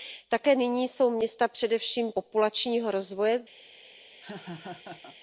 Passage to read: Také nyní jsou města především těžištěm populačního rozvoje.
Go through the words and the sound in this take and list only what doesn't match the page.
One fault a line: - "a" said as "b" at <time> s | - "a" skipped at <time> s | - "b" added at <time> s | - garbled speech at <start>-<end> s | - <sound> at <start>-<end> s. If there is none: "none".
- "těžištěm" skipped at 2.1 s
- laugh at 4.2-5.2 s